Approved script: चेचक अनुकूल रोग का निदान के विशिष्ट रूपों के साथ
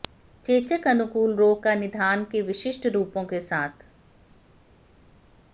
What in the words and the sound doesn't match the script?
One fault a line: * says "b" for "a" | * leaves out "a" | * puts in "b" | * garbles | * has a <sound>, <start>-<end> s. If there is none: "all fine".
all fine